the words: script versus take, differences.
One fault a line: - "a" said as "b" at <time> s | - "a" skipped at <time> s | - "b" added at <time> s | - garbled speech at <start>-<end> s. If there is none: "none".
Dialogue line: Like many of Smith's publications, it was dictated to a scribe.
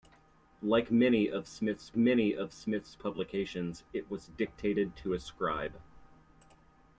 - "many of Smith's" added at 1.9 s